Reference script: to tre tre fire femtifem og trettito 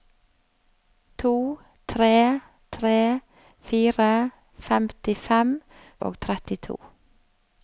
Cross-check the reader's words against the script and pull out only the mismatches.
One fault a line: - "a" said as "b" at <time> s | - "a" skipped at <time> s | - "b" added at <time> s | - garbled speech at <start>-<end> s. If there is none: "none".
none